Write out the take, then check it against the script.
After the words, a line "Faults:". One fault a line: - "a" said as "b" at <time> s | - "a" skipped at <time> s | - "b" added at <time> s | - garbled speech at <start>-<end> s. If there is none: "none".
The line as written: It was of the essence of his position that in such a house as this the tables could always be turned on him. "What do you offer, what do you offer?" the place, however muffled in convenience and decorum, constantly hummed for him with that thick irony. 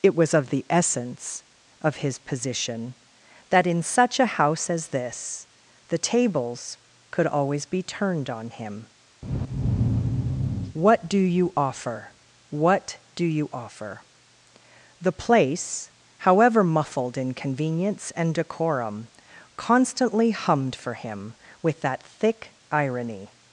It was of the essence of his position that in such a house as this the tables could always be turned on him. "What do you offer, what do you offer?" the place, however muffled in convenience and decorum, constantly hummed for him with that thick irony.
Faults:
none